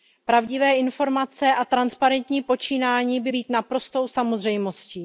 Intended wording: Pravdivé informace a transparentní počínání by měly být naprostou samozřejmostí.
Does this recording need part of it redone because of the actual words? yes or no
yes